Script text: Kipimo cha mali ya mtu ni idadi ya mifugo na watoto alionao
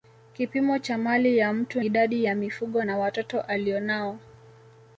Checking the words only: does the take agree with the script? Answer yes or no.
no